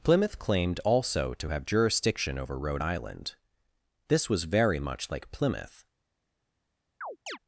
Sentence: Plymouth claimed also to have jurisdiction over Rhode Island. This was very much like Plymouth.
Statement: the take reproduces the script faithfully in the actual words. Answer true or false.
true